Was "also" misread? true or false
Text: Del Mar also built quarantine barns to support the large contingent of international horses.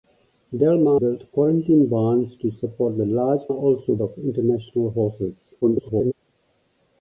true